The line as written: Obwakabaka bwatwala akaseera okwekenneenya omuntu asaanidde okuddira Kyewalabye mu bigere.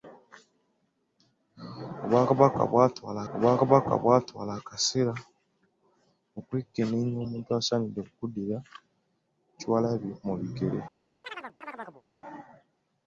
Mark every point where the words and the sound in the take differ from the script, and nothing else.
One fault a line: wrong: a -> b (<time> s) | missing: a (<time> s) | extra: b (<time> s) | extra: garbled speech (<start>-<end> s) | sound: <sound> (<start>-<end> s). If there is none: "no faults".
extra: obwakabaka bwatwala (3.3 s)
sound: chirp (11.2-12.0 s)